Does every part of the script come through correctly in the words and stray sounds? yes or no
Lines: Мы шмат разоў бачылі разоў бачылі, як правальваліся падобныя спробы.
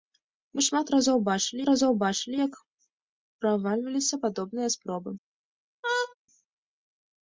no